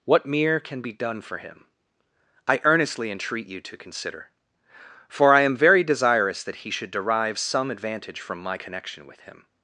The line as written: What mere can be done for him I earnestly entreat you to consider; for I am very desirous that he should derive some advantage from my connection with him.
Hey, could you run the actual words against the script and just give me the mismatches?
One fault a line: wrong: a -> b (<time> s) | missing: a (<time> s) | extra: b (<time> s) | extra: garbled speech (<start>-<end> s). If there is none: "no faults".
no faults